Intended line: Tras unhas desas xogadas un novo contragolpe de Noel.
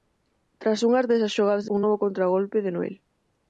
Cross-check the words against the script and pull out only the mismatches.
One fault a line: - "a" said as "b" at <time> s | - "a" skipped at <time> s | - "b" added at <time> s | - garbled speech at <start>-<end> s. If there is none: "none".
none